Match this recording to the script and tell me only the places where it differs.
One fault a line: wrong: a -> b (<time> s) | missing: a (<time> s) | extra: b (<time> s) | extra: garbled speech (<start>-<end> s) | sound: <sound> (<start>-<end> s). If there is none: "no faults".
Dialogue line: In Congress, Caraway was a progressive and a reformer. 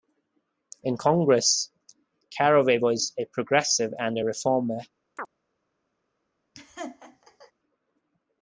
sound: chirp (5.2-5.3 s)
sound: laugh (6.5-7.5 s)